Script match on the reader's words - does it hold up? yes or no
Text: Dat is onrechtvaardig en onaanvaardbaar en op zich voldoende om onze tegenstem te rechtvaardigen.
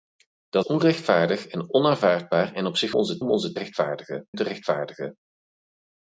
no